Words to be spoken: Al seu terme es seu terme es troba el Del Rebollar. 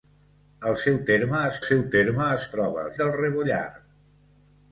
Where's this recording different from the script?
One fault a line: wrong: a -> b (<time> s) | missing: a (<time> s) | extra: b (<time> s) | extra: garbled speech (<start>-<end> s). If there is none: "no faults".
no faults